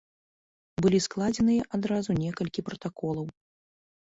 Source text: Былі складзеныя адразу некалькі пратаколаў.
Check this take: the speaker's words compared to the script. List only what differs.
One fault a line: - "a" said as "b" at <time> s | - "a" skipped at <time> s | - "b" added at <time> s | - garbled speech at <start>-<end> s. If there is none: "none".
none